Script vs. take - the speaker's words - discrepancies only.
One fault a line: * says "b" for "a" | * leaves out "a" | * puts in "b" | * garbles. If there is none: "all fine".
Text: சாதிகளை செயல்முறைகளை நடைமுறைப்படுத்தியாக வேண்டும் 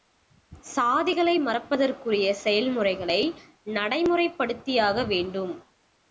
* puts in "மறப்பதற்குரிய"